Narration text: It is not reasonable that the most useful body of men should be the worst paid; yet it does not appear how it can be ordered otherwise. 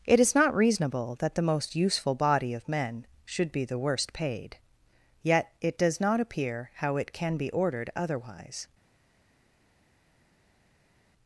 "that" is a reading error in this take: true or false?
false